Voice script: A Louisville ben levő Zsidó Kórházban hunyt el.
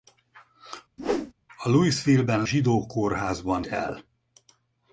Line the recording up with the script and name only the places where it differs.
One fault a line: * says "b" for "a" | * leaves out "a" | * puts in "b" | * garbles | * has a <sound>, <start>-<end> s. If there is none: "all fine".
* has a whoosh, 1.0-1.3 s
* leaves out "levő"
* leaves out "hunyt"